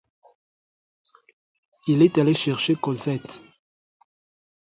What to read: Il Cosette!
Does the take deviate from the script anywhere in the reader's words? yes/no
yes